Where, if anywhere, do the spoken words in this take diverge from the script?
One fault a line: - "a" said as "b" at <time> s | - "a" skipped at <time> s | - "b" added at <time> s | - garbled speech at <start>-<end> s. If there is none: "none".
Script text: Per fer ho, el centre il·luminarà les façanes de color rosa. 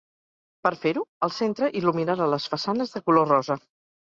none